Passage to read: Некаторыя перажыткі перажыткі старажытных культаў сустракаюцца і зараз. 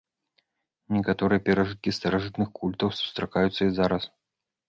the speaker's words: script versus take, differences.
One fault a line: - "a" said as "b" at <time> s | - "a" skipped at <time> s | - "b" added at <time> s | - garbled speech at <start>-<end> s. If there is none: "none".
- "перажыткі" skipped at 1.9 s